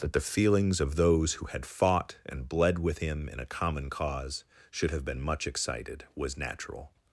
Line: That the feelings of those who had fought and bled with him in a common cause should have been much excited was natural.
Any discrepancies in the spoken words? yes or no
no